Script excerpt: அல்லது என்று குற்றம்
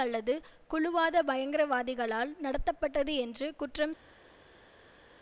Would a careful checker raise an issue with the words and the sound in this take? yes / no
yes